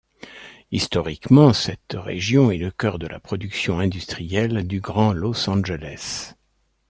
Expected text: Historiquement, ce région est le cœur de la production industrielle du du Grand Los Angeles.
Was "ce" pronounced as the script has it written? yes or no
no